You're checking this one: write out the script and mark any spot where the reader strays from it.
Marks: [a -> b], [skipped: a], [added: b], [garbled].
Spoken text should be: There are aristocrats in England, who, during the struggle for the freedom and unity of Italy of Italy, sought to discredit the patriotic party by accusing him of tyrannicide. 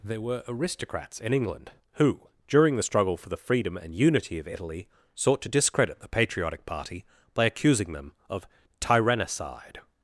There [are -> were] aristocrats in England, who, during the struggle for the freedom and unity of Italy [skipped: of Italy,] sought to discredit the patriotic party by accusing [him -> them] of tyrannicide.